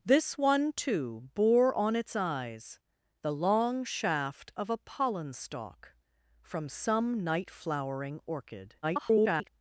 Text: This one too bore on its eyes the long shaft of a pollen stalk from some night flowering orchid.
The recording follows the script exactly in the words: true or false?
false